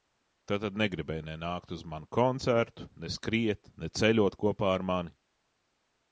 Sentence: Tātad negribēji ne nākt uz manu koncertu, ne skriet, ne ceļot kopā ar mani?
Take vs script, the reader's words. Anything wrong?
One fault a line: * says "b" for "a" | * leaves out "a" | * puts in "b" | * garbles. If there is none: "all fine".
all fine